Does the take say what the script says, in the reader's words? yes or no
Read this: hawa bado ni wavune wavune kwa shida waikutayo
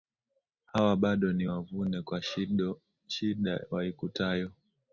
no